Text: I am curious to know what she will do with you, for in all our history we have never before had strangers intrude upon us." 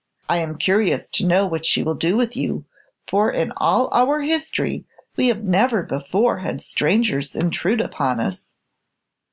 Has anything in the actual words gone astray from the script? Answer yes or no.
no